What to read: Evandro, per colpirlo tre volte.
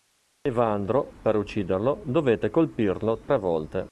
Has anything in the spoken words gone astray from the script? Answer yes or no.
yes